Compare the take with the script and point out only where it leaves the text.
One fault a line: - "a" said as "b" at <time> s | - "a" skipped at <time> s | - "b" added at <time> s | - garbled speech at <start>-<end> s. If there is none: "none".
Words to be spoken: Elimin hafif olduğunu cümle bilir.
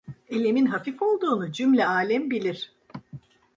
- "alem" added at 1.8 s